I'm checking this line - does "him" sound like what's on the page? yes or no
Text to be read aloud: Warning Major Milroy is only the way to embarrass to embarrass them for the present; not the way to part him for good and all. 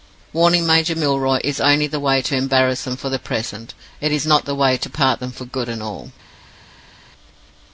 no